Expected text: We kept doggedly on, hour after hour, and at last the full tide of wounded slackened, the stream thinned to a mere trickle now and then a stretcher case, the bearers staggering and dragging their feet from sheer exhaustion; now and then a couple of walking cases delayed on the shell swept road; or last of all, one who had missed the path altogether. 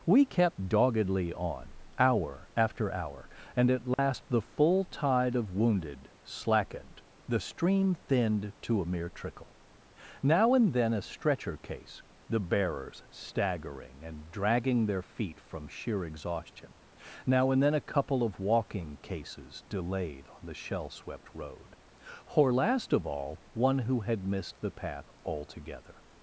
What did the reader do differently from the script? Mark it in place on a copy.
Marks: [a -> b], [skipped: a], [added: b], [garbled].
We kept doggedly on, hour after hour, and at last the full tide of wounded slackened, the stream thinned to a mere trickle now and then a stretcher case, the bearers staggering and dragging their feet from sheer exhaustion; now and then a couple of walking cases delayed on the shell swept road; or last of all, one who had missed the path altogether.